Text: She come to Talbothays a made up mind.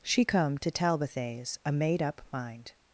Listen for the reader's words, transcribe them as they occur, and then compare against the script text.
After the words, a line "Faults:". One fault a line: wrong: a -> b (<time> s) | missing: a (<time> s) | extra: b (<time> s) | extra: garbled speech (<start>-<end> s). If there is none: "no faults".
She come to Talbothays a made up mind.
Faults:
no faults